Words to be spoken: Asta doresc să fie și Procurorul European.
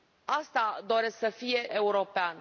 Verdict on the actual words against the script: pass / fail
fail